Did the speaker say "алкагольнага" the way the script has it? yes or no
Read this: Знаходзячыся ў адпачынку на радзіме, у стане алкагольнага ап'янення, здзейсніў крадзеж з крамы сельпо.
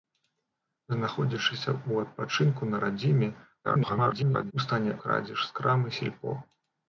no